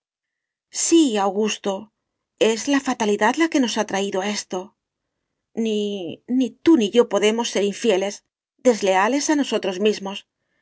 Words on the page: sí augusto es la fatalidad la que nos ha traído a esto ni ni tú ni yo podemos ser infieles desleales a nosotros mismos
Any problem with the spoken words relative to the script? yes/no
no